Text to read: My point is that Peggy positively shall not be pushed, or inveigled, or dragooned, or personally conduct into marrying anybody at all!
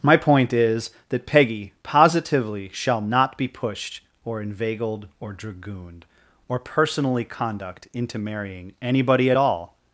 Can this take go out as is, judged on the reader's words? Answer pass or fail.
pass